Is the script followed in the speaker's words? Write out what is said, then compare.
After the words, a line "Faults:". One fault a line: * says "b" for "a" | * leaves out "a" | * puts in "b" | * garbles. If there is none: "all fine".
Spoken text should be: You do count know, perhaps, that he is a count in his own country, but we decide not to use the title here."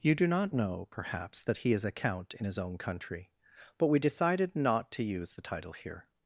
You do not know, perhaps, that he is a count in his own country, but we decided not to use the title here."
Faults:
* says "not" for "count"
* says "decided" for "decide"